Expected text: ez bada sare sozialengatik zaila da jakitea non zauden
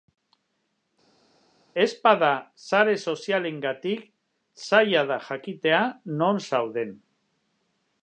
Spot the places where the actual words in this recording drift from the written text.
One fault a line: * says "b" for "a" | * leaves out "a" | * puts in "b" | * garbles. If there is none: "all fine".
all fine